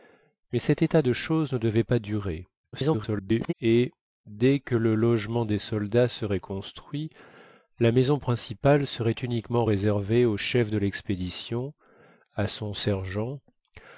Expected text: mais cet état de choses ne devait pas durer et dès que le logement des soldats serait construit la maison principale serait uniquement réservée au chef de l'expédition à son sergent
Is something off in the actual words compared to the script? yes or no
yes